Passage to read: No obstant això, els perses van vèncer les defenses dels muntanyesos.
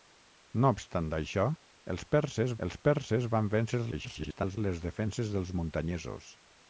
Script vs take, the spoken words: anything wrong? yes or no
yes